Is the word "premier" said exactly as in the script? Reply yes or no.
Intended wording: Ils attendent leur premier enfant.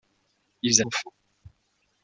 no